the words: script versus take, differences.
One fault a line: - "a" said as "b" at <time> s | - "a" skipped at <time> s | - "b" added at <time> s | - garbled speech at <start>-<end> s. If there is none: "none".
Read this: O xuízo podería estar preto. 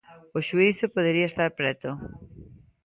none